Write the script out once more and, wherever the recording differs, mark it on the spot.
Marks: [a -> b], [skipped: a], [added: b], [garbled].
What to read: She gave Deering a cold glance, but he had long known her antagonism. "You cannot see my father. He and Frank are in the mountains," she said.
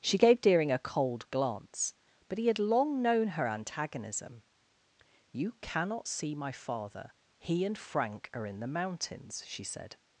She gave Deering a cold glance, but he had long known her antagonism. "You cannot see my father. He and Frank are in the mountains," she said.